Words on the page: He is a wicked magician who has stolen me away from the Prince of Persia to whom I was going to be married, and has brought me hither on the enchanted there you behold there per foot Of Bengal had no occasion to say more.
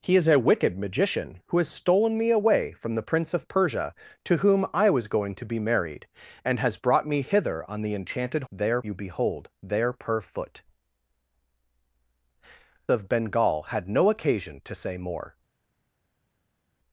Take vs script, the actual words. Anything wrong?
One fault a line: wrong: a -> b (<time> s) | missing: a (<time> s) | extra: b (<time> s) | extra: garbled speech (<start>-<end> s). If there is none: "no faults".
no faults